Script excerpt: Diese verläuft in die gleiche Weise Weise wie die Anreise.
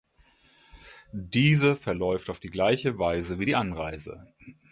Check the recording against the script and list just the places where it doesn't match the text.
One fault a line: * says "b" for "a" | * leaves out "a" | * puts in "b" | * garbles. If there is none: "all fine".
* says "auf" for "in"
* leaves out "Weise"